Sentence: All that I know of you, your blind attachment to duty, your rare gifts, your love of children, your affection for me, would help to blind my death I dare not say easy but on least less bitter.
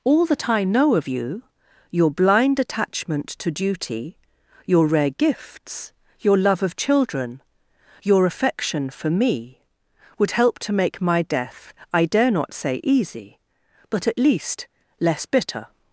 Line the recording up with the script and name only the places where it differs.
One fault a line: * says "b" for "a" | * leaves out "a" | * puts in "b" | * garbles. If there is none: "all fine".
* says "make" for "blind"
* says "at" for "on"